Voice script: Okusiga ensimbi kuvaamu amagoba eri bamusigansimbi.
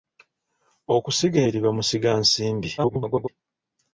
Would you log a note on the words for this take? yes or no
yes